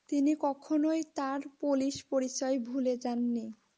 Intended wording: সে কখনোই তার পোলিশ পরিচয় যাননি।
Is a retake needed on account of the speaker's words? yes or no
yes